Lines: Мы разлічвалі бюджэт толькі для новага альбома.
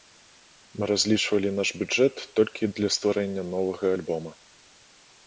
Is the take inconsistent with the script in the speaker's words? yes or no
yes